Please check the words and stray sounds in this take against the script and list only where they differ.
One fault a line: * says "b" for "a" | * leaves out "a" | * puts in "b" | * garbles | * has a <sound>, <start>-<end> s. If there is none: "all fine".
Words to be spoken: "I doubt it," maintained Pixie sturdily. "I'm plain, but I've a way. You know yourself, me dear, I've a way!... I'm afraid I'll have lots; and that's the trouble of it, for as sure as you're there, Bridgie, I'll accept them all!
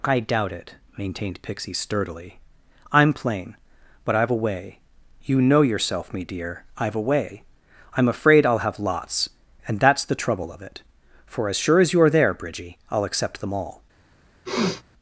* has a sniff, 14.5-14.8 s